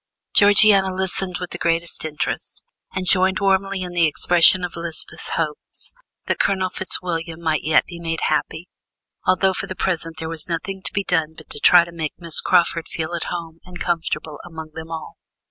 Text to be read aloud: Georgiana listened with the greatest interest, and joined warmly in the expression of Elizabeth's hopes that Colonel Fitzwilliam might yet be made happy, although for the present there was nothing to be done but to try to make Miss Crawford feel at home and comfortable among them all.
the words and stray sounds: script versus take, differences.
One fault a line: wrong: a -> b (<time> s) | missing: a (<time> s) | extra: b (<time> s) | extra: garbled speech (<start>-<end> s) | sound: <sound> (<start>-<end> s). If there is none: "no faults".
no faults